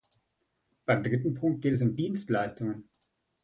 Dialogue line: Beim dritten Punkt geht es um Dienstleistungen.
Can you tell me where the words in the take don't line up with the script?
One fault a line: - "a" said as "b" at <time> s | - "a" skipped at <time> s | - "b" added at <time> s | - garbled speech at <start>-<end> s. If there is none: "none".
none